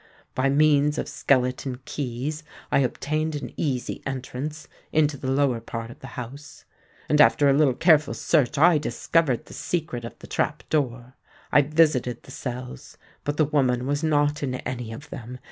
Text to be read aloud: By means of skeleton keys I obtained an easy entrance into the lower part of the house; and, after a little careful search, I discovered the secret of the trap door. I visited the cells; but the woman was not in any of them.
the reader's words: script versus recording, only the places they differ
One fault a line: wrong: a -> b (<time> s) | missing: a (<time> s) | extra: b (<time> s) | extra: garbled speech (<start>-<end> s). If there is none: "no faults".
no faults